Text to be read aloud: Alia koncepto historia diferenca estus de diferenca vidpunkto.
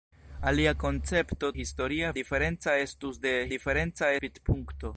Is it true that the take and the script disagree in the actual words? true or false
false